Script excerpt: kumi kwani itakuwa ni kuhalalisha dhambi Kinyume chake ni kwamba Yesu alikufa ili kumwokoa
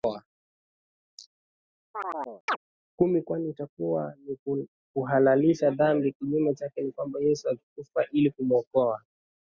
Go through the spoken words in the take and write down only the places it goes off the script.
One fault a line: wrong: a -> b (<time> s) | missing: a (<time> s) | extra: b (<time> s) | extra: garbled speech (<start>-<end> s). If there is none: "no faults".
no faults